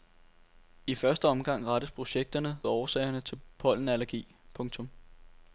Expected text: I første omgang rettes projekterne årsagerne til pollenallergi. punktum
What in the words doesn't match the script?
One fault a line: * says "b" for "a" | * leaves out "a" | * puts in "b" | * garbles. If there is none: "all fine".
all fine